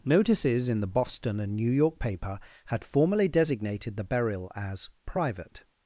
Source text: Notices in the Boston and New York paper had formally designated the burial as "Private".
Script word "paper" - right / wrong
right